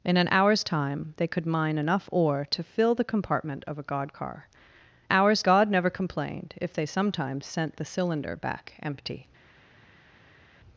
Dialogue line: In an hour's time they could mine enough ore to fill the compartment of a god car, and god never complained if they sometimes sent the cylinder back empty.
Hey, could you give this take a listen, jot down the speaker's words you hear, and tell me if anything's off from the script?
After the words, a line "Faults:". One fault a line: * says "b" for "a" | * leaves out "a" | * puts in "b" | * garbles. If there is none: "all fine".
In an hour's time they could mine enough ore to fill the compartment of a god car, hour's god never complained if they sometimes sent the cylinder back empty.
Faults:
* says "hour's" for "and"